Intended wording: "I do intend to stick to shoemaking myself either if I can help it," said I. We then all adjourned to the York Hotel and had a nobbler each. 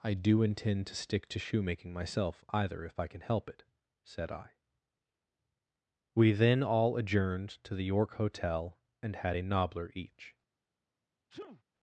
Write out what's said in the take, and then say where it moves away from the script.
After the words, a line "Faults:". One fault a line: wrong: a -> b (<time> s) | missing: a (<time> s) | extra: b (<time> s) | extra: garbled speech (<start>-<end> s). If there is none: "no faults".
"I do intend to stick to shoemaking myself either if I can help it," said I. We then all adjourned to the York Hotel and had a nobbler each.
Faults:
no faults